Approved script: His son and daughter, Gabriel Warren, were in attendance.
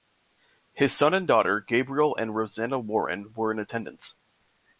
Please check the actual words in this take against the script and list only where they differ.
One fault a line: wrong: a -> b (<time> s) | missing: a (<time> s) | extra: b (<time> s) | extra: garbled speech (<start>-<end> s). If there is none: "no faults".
extra: and Rosanna (2.1 s)